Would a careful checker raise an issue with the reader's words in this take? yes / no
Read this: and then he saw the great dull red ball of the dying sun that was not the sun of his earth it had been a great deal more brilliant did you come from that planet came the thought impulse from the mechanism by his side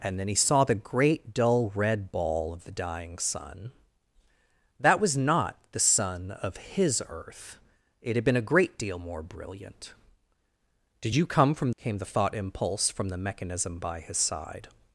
yes